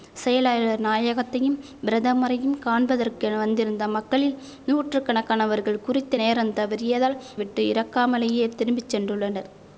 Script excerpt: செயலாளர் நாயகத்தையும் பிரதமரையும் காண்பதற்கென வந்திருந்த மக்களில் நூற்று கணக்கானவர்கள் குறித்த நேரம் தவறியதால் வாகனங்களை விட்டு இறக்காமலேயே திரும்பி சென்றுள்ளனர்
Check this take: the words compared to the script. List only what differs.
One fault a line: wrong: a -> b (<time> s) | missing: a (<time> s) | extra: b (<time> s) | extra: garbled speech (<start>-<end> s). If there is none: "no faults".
missing: வாகனங்களை (7.2 s)